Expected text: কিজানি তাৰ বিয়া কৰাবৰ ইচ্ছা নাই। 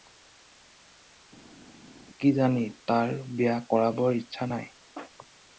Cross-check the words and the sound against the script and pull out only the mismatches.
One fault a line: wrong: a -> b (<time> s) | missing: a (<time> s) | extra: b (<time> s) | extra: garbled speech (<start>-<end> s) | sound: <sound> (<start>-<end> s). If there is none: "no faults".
no faults